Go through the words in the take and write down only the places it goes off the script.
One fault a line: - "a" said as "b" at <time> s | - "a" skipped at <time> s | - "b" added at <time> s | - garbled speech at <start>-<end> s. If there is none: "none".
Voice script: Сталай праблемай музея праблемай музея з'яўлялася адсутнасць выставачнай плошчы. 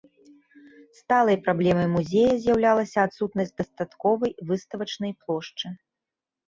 - "праблемай музея" skipped at 2.3 s
- "дастатковай" added at 3.6 s